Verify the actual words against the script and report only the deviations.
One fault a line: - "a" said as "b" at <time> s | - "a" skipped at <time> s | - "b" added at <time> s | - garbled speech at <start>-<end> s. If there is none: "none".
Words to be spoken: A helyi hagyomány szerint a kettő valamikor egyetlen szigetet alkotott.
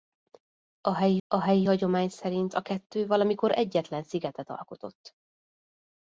- "a helyi" added at 1.3 s